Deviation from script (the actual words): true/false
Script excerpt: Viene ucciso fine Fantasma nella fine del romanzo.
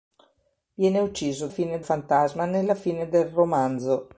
false